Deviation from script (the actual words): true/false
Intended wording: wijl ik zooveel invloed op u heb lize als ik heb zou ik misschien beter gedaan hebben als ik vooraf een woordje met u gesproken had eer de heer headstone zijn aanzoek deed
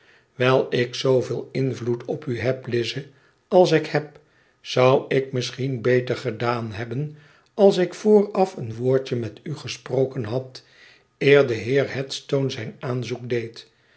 false